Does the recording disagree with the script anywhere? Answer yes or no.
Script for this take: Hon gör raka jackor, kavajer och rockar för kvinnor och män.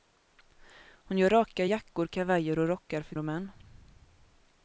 yes